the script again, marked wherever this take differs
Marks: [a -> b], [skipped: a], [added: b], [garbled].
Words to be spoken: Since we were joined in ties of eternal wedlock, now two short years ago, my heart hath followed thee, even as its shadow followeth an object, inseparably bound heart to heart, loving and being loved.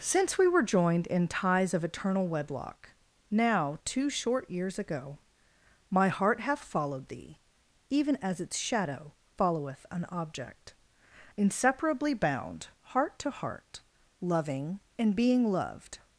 Since we were joined in ties of eternal wedlock, now two short years ago, my heart hath followed thee, even as its shadow followeth an object, inseparably bound heart to heart, loving and being loved.